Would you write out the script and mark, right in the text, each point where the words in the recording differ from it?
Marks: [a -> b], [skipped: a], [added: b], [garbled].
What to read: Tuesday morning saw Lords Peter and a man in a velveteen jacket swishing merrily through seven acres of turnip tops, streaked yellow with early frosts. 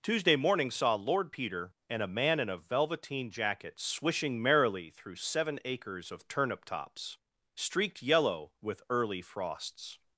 Tuesday morning saw [Lords -> Lord] Peter and a man in a velveteen jacket swishing merrily through seven acres of turnip tops, streaked yellow with early frosts.